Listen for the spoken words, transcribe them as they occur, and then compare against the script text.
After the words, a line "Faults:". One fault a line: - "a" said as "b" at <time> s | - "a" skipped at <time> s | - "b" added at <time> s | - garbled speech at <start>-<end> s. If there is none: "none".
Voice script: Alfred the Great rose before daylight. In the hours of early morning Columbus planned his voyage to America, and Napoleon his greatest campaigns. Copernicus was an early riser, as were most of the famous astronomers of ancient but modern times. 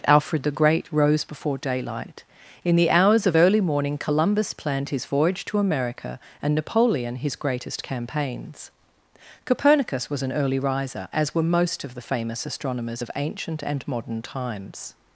Alfred the Great rose before daylight. In the hours of early morning Columbus planned his voyage to America, and Napoleon his greatest campaigns. Copernicus was an early riser, as were most of the famous astronomers of ancient and modern times.
Faults:
- "but" said as "and" at 13.6 s